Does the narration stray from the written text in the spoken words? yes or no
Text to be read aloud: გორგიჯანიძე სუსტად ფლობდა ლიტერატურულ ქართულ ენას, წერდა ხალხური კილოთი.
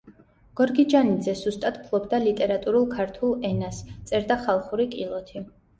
no